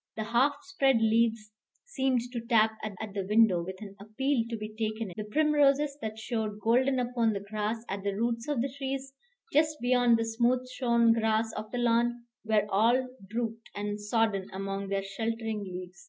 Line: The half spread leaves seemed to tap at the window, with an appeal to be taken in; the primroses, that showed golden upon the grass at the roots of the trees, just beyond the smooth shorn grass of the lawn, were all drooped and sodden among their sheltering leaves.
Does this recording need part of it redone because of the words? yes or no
yes